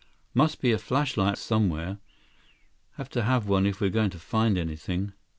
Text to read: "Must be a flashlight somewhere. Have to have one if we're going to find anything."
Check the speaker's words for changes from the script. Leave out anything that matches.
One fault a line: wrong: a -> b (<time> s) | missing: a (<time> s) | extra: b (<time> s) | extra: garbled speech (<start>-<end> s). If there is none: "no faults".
no faults